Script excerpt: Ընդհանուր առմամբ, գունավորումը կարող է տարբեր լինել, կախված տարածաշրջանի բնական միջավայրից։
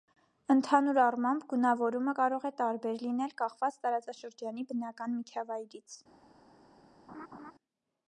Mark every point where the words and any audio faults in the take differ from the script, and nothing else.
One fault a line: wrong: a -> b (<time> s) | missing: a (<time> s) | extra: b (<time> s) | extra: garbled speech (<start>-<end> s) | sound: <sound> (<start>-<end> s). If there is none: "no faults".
sound: laugh (7.1-7.5 s)